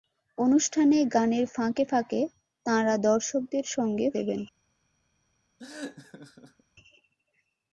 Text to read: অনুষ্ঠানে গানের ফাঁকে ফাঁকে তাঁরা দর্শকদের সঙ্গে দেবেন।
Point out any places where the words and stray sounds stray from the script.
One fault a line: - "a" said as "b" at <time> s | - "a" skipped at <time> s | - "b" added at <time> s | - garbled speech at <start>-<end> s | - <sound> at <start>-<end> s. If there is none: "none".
- laugh at 5.6-6.6 s